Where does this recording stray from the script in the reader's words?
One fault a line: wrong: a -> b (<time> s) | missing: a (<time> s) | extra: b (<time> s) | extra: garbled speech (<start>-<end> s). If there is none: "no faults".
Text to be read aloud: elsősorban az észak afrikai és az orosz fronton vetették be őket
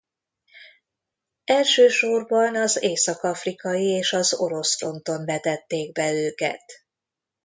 no faults